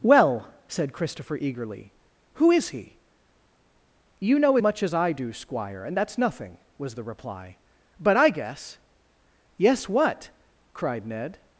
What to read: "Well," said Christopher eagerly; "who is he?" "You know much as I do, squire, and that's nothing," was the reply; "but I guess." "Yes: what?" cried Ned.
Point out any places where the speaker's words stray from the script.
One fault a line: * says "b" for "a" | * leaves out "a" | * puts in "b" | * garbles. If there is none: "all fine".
all fine